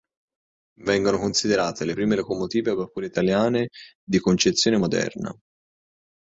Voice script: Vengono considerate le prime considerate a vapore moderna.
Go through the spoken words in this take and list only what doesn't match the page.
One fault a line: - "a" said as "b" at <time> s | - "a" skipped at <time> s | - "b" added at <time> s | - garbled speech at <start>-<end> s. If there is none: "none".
- "considerate" said as "locomotive" at 2.1 s
- "italiane di concezione" added at 3.1 s